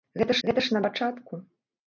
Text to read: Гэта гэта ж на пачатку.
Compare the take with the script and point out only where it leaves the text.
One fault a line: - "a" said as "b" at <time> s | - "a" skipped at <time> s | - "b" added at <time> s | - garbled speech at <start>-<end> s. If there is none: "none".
none